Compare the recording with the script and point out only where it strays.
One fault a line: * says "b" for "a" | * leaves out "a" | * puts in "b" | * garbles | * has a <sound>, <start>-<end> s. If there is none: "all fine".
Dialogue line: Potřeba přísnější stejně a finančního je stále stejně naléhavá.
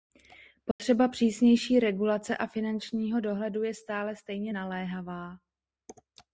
* has a dropout, 0.7-0.8 s
* says "regulace" for "stejně"
* puts in "dohledu"